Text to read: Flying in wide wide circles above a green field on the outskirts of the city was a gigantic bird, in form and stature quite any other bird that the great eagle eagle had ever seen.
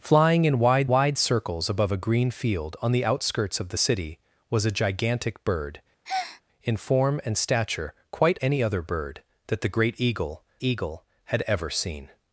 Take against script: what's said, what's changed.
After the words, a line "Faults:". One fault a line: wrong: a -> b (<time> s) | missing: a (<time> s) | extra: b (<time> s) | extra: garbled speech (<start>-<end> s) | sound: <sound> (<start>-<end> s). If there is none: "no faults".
Flying in wide wide circles above a green field on the outskirts of the city was a gigantic bird, in form and stature quite any other bird that the great eagle eagle had ever seen.
Faults:
sound: breath (6.0-6.4 s)